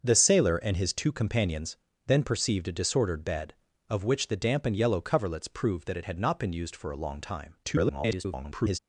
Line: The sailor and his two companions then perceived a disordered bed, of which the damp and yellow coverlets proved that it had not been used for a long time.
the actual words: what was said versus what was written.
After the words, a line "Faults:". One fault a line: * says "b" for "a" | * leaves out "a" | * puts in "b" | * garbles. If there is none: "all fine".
The sailor and his two companions then perceived a disordered bed, of which the damp and yellow coverlets proved that it had not been used for a long time. [garbled]
Faults:
* garbles